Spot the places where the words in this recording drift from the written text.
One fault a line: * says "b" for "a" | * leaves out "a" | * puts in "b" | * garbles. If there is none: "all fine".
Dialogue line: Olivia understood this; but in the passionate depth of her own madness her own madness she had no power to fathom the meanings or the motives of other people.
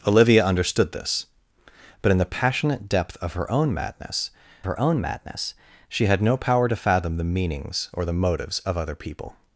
all fine